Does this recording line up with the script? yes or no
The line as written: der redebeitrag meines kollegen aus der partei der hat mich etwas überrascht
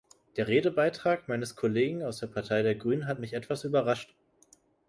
no